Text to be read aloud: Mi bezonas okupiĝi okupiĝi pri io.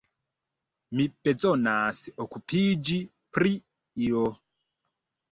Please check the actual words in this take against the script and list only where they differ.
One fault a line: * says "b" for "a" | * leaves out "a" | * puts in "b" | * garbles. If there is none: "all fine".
* leaves out "okupiĝi"